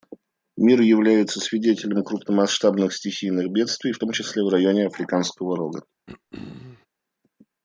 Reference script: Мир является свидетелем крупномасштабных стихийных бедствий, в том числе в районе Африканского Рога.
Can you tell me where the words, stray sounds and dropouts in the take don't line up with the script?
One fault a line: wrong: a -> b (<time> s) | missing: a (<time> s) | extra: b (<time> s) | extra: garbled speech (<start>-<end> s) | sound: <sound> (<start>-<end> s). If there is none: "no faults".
sound: throat clearing (6.1-6.9 s)